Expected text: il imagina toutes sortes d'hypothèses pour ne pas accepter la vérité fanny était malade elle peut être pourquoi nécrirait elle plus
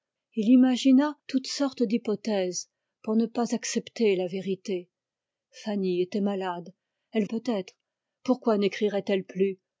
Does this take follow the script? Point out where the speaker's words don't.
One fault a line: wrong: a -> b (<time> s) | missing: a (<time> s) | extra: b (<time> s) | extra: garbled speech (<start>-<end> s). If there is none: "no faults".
no faults